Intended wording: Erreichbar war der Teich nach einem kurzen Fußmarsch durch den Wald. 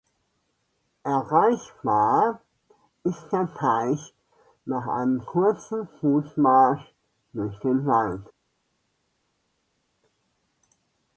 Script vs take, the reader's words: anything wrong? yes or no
yes